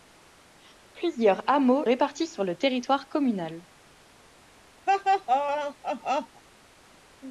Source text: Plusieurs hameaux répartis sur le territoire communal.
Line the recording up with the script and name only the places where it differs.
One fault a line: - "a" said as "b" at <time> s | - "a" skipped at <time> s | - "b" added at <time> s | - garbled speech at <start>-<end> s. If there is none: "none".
none